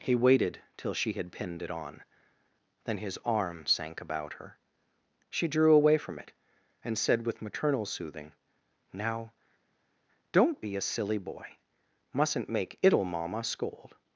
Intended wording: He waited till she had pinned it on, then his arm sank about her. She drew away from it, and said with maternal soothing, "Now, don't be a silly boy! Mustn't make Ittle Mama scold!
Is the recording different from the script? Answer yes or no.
no